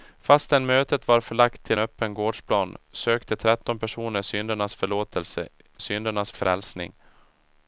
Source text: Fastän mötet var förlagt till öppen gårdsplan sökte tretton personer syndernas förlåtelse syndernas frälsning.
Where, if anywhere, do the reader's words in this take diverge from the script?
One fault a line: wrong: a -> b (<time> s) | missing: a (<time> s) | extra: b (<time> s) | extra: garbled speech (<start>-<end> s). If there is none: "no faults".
no faults